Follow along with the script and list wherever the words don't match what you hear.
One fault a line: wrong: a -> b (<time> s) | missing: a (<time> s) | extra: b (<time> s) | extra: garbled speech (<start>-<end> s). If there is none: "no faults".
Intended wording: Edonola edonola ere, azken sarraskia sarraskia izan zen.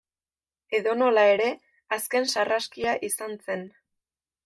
missing: edonola (1.3 s)
missing: sarraskia (3.0 s)